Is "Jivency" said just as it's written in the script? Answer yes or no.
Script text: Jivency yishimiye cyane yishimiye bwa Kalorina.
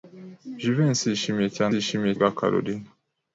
yes